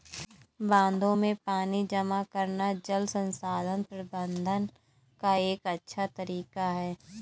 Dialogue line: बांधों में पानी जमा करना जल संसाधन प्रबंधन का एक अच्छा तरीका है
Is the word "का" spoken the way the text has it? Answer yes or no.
yes